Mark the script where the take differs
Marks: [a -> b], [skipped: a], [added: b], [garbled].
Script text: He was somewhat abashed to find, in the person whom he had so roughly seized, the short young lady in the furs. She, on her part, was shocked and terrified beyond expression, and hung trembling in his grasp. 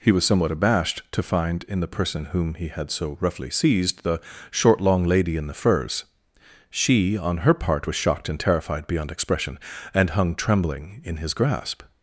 He was somewhat abashed to find, in the person whom he had so roughly seized, the short [young -> long] lady in the furs. She, on her part, was shocked and terrified beyond expression, and hung trembling in his grasp.